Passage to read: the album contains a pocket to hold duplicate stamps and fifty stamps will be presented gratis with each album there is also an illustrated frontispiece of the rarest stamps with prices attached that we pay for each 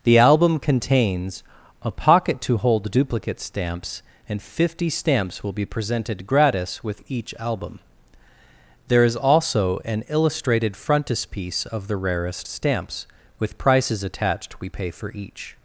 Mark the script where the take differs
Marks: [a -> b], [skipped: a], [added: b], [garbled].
the album contains a pocket to hold duplicate stamps and fifty stamps will be presented gratis with each album there is also an illustrated frontispiece of the rarest stamps with prices attached [skipped: that] we pay for each